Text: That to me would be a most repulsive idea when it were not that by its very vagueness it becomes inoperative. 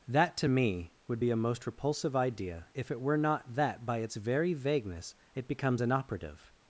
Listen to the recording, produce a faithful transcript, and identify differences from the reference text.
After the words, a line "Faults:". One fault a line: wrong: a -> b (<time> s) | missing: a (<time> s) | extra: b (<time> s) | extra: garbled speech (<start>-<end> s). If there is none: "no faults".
That to me would be a most repulsive idea if it were not that by its very vagueness it becomes inoperative.
Faults:
wrong: when -> if (2.7 s)